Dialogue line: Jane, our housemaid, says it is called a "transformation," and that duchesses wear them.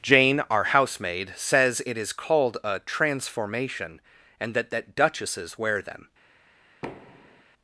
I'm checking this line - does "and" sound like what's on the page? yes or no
yes